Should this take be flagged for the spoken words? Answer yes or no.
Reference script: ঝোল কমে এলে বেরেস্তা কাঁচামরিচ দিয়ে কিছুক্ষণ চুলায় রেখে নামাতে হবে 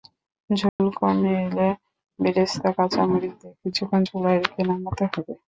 no